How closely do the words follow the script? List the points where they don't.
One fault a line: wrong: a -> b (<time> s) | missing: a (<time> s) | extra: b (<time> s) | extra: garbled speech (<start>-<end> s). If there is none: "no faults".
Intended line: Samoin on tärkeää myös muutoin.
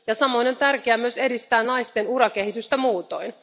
extra: edistää naisten urakehitystä (1.2 s)